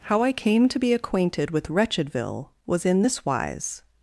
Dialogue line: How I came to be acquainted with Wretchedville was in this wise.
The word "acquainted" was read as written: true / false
true